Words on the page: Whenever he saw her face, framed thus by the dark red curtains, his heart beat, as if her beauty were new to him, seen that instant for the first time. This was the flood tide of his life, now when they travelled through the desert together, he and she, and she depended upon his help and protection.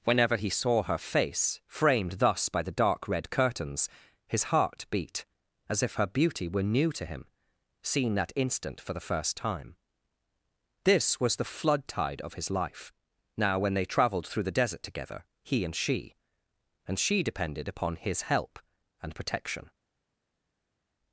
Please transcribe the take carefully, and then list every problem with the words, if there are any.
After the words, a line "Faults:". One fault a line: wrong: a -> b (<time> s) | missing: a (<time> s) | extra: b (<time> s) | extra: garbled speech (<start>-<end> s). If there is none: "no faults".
Whenever he saw her face, framed thus by the dark red curtains, his heart beat, as if her beauty were new to him, seen that instant for the first time. This was the flood tide of his life, now when they travelled through the desert together, he and she, and she depended upon his help and protection.
Faults:
no faults